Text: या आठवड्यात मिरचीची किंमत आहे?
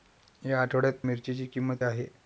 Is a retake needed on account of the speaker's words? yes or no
no